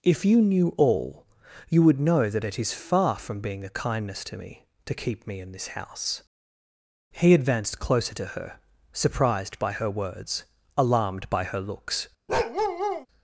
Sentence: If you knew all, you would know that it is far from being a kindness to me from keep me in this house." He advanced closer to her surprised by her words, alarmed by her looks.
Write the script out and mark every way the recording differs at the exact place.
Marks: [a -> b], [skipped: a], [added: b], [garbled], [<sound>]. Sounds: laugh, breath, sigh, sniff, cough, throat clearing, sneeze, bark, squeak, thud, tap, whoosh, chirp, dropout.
If you knew all, you would know that it is far from being a kindness to me [from -> to] keep me in this house." He advanced closer to her surprised by her words, alarmed by her looks. [bark]